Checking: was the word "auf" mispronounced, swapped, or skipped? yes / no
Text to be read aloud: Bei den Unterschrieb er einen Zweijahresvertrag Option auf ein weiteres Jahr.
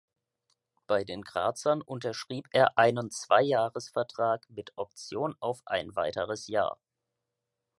no